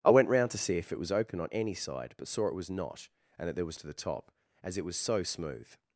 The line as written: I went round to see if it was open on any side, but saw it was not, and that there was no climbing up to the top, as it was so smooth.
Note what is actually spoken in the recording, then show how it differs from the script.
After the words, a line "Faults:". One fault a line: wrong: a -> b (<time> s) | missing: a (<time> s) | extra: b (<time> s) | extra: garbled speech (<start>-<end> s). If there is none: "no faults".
I went round to see if it was open on any side, but saw it was not, and that there was to the top, as it was so smooth.
Faults:
missing: no climbing up (3.8 s)